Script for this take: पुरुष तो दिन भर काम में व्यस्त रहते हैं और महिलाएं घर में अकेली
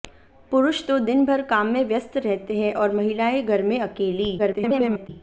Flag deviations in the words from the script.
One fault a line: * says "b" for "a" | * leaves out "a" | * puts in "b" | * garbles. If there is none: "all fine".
* garbles